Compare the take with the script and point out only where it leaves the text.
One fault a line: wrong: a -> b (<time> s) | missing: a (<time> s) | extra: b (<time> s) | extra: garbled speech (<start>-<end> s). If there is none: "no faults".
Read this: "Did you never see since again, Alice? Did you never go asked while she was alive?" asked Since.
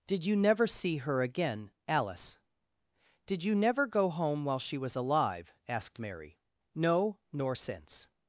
wrong: since -> her (1.0 s)
wrong: asked -> home (4.1 s)
extra: Mary No nor (6.0 s)